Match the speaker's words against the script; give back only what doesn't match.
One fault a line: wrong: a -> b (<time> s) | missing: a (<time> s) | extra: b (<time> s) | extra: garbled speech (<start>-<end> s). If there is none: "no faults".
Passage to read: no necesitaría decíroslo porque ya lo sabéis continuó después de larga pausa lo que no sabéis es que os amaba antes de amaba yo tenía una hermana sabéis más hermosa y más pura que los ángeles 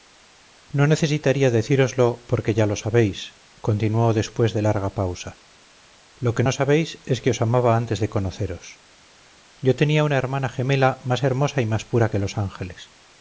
wrong: amaba -> conoceros (8.1 s)
wrong: sabéis -> gemela (10.5 s)